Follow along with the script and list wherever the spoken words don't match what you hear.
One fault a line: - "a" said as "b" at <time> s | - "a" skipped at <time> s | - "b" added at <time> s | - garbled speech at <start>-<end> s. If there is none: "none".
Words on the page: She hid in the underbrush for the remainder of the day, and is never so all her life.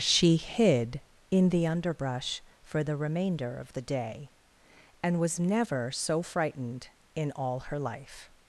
- "is" said as "was" at 5.2 s
- "frightened in" added at 6.2 s